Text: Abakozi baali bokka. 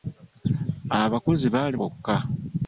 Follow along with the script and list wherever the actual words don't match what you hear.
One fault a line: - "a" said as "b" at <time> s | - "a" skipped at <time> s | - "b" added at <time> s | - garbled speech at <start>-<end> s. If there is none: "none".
none